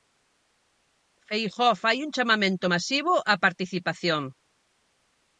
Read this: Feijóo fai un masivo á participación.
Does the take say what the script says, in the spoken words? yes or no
no